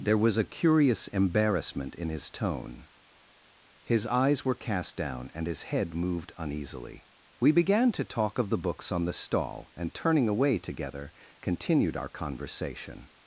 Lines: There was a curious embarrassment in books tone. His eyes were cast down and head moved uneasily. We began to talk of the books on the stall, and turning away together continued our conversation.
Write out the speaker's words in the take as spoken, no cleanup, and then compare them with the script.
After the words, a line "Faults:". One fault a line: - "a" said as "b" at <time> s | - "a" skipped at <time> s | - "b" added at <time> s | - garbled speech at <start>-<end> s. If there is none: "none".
There was a curious embarrassment in his tone. His eyes were cast down and his head moved uneasily. We began to talk of the books on the stall, and turning away together continued our conversation.
Faults:
- "books" said as "his" at 2.1 s
- "his" added at 5.5 s